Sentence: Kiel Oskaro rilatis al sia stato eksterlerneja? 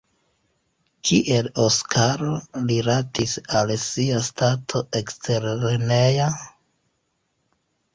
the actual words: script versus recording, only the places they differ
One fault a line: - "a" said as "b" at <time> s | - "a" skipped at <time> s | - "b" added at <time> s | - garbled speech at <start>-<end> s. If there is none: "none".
none